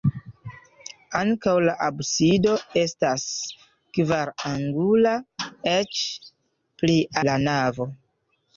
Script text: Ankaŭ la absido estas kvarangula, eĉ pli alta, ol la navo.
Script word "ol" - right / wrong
wrong